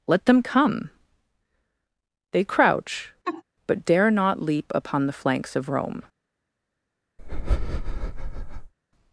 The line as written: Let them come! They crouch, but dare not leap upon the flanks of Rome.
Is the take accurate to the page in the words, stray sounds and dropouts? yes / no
no